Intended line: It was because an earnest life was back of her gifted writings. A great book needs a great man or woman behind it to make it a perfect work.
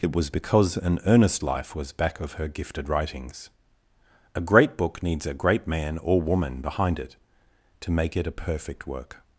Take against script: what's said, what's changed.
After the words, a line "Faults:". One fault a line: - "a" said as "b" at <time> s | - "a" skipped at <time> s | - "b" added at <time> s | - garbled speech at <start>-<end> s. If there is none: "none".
It was because an earnest life was back of her gifted writings. A great book needs a great man or woman behind it to make it a perfect work.
Faults:
none